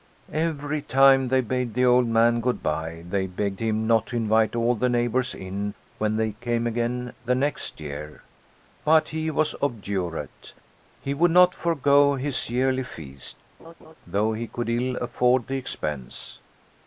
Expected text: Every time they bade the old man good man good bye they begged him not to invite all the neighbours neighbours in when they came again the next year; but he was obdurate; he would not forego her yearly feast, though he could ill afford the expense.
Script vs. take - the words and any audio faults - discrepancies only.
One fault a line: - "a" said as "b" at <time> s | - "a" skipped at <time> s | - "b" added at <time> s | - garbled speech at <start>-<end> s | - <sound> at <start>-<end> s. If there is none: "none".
- "man good" skipped at 2.6 s
- "neighbours" skipped at 5.3 s
- "her" said as "his" at 12.1 s
- laugh at 13.6-13.9 s